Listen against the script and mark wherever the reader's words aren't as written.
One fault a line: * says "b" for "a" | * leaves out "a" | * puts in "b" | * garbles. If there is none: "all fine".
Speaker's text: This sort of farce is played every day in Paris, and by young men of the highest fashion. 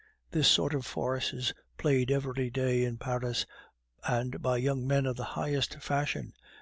all fine